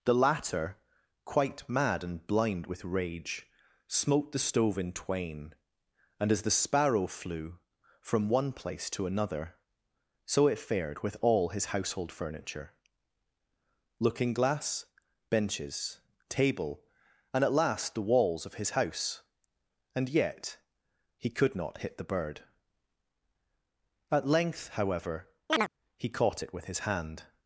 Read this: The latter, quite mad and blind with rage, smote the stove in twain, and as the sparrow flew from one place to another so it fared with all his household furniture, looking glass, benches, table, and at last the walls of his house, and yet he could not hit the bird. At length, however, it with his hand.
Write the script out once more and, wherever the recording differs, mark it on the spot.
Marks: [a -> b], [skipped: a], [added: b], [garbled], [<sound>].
The latter, quite mad and blind with rage, smote the stove in twain, and as the sparrow flew from one place to another so it fared with all his household furniture, looking glass, benches, table, and at last the walls of his house, and yet he could not hit the bird. At length, however, [chirp] [added: he caught] it with his hand.